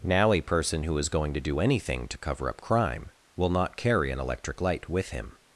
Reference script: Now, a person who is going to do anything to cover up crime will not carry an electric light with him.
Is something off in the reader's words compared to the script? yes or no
no